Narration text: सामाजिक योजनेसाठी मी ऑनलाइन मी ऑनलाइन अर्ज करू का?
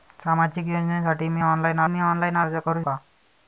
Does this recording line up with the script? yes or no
yes